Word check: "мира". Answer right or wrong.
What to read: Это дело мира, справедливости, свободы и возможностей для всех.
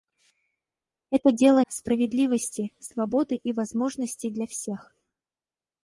wrong